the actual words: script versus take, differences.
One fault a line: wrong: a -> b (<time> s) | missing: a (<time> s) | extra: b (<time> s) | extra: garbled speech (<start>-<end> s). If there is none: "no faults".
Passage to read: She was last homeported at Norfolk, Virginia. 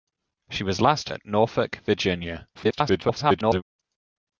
missing: homeported (1.1 s)
extra: garbled speech (2.5-3.6 s)